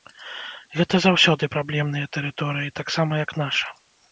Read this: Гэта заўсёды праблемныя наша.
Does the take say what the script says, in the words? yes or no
no